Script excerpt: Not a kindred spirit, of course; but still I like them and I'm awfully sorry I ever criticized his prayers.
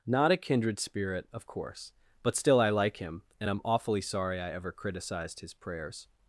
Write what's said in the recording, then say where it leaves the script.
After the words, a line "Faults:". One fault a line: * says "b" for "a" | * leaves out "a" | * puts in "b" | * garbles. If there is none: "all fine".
Not a kindred spirit, of course; but still I like him and I'm awfully sorry I ever criticized his prayers.
Faults:
* says "him" for "them"